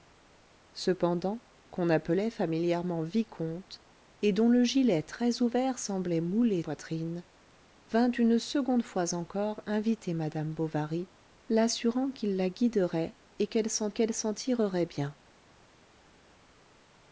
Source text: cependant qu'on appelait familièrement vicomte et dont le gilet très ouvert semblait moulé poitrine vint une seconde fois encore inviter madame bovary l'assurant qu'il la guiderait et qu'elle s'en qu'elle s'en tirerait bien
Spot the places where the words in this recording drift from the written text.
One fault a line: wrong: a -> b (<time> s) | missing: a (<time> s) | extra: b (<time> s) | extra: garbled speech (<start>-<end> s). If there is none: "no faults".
no faults